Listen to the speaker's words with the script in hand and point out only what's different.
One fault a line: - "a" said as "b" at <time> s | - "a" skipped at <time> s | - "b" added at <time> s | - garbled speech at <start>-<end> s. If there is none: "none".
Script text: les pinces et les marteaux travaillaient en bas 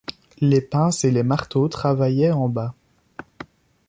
none